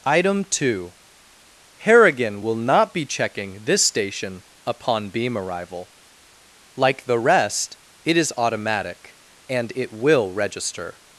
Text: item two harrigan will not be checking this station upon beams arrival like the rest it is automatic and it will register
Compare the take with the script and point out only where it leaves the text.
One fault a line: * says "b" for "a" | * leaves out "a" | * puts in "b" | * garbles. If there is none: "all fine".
* says "beam" for "beams"